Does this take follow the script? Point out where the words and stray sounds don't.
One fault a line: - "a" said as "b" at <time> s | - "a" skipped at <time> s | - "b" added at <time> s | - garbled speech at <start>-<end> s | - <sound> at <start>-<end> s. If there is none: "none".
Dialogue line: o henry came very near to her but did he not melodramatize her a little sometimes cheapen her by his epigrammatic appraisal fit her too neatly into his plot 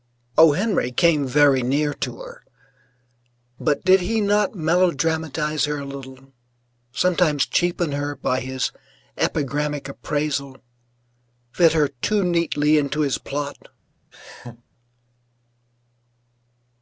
- laugh at 14.1-14.6 s